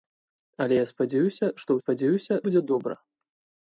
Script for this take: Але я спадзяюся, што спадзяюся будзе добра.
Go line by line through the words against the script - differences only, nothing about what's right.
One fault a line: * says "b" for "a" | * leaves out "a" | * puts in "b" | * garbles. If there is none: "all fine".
all fine